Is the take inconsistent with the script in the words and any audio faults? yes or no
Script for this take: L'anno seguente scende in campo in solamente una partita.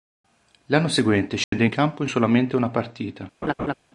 yes